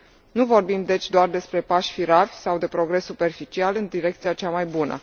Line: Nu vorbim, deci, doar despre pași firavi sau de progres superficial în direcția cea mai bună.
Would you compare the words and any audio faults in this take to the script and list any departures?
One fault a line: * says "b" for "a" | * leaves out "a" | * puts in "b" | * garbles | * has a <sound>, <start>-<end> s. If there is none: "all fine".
all fine